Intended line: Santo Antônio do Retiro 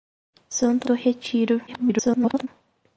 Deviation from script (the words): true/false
true